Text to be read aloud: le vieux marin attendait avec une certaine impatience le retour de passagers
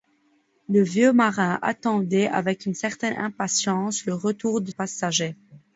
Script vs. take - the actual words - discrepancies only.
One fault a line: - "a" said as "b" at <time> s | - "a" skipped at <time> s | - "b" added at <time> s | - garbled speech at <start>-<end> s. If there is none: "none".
none